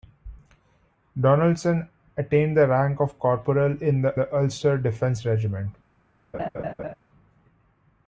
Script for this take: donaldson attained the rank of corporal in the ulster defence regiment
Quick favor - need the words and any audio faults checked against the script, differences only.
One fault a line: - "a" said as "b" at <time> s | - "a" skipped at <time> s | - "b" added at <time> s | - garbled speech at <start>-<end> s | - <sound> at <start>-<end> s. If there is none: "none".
- "the" added at 4.1 s
- laugh at 6.3-6.9 s